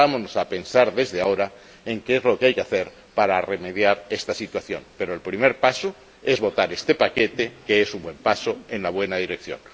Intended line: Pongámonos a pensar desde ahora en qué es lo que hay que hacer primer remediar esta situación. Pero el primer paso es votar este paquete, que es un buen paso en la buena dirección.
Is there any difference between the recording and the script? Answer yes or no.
yes